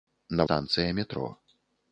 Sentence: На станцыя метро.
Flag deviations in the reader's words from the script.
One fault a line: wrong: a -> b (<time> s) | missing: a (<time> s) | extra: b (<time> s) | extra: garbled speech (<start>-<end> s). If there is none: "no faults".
no faults